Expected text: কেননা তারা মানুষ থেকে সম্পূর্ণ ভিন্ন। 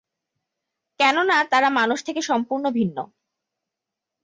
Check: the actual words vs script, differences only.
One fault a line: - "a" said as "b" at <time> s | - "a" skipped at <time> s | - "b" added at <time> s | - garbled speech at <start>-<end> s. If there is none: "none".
none